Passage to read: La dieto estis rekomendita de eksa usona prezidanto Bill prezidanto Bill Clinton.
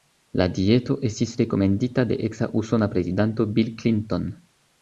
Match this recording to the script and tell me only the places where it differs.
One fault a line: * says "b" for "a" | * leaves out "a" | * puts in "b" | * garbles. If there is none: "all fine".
* leaves out "prezidanto Bill"